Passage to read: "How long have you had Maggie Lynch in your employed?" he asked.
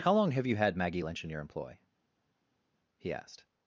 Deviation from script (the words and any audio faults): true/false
true